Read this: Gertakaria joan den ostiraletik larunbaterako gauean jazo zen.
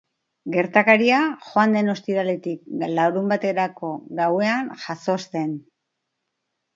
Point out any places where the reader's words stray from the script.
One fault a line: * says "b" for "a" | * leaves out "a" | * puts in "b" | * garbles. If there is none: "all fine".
all fine